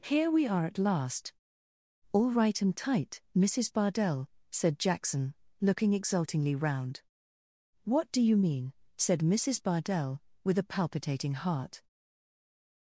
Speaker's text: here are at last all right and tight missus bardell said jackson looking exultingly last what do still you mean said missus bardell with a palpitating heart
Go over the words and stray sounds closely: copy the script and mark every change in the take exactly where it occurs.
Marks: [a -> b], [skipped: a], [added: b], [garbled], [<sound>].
here [added: we] are at last all right and tight missus bardell said jackson looking exultingly [last -> round] what do [skipped: still] you mean said missus bardell with a palpitating heart